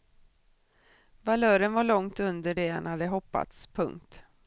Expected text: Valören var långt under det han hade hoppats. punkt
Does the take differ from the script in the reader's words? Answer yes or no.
no